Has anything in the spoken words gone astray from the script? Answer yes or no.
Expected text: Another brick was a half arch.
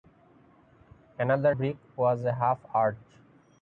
no